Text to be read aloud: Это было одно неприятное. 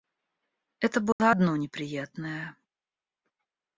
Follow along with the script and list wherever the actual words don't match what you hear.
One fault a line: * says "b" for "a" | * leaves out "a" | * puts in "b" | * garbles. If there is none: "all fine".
all fine